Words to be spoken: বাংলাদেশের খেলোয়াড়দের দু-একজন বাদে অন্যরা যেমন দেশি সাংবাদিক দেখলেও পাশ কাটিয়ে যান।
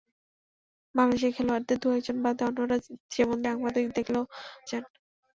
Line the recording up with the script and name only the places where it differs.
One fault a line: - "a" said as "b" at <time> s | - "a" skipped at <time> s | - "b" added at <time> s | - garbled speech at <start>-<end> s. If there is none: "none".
- "দেশি" skipped at 3.4 s
- "পাশ কাটিয়ে" skipped at 4.2 s